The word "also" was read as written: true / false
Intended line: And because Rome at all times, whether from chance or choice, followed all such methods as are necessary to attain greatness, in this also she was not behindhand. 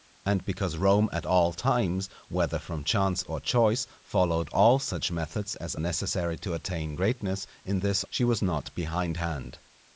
false